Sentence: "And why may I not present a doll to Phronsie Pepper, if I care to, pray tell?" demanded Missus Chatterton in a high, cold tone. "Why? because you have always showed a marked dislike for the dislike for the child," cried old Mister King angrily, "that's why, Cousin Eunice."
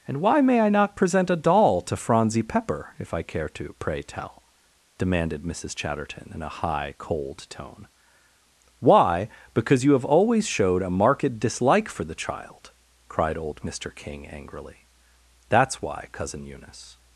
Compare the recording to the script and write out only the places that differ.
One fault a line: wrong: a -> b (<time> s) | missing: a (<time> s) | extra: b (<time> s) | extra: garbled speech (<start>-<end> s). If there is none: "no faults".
missing: dislike for the (12.2 s)